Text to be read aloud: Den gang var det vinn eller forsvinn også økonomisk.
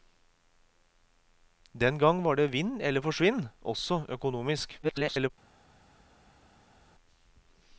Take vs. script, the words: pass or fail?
fail